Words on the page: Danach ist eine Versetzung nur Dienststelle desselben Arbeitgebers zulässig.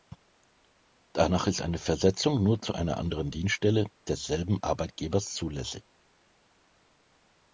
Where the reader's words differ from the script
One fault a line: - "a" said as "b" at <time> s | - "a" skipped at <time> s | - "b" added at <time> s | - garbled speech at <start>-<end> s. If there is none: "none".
- "zu einer anderen" added at 2.6 s